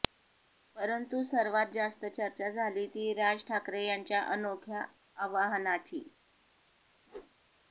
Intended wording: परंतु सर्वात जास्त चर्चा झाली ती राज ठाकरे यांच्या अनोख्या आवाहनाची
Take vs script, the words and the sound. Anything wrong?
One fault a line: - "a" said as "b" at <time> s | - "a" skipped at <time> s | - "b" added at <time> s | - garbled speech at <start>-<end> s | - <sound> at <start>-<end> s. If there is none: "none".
- whoosh at 7.1-7.3 s